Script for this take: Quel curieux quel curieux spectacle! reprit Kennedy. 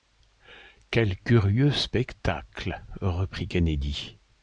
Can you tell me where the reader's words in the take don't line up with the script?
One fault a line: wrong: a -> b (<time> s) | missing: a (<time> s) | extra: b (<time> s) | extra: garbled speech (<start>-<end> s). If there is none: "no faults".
missing: quel curieux (1.7 s)